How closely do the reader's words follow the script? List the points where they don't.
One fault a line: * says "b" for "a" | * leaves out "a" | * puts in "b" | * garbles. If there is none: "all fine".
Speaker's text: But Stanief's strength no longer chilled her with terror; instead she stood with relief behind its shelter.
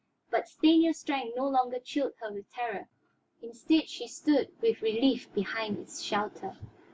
all fine